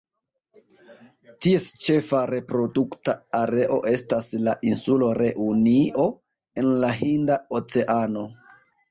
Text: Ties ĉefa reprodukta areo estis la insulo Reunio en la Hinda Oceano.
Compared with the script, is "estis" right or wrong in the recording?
wrong